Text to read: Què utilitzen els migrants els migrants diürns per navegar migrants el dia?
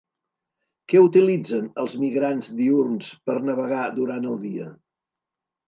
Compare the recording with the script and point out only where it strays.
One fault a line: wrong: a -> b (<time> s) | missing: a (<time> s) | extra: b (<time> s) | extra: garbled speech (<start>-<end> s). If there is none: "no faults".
missing: els migrants (2.5 s)
wrong: migrants -> durant (4.0 s)